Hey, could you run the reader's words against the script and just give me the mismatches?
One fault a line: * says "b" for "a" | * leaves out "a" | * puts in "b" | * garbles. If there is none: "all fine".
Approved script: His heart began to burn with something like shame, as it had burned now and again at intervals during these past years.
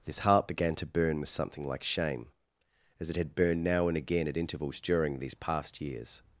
all fine